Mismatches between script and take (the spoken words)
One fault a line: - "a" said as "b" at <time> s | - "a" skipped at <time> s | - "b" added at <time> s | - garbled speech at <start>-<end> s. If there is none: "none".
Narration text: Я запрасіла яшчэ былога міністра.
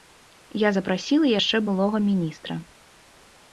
none